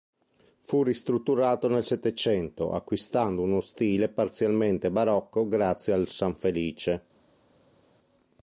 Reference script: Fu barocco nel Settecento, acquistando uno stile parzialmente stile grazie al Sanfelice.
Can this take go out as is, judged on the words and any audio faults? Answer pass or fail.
fail